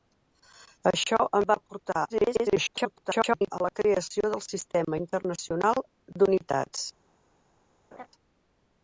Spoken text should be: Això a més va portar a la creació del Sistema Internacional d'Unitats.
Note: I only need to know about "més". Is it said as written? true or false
false